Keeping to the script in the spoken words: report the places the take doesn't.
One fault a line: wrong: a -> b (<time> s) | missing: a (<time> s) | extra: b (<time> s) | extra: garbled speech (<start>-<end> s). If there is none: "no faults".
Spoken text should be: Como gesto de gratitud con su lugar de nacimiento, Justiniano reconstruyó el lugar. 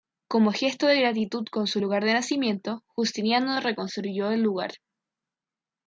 no faults